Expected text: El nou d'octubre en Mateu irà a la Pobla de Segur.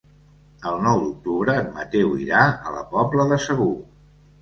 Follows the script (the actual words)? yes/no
yes